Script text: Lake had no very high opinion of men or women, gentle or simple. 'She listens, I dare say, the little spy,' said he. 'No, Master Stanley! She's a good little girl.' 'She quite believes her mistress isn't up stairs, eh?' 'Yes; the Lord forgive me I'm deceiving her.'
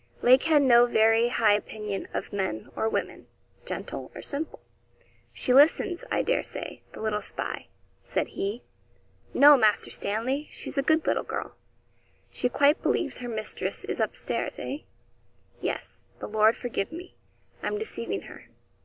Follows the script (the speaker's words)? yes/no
no